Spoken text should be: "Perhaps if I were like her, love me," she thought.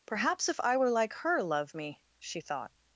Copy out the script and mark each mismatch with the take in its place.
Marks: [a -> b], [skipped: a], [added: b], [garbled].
"Perhaps if I were like her, love me," she thought.